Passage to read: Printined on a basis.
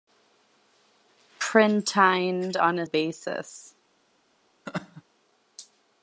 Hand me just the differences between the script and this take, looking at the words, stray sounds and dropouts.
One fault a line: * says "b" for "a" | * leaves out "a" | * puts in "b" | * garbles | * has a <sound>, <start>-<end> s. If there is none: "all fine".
* has a laugh, 4.7-5.0 s